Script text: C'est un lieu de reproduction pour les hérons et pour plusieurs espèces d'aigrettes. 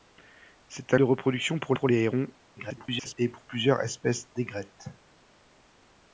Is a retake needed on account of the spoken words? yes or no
yes